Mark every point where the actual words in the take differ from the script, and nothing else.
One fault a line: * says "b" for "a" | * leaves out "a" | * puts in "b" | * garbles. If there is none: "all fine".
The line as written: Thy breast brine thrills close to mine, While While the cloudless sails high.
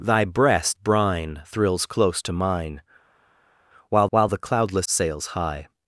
all fine